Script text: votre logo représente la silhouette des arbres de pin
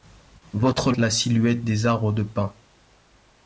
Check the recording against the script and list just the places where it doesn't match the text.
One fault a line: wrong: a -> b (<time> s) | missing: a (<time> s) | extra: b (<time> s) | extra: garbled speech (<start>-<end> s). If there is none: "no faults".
missing: logo représente (0.9 s)